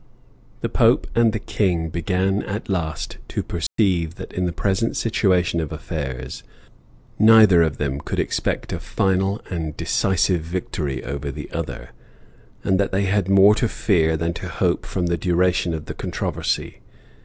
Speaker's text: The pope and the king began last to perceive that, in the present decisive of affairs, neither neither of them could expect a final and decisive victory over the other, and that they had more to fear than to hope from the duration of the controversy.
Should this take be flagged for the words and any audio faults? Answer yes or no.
yes